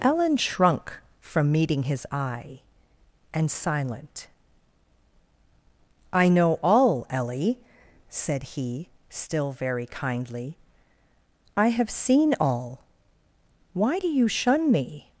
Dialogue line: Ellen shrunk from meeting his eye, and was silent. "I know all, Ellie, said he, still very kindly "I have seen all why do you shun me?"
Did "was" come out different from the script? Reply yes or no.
yes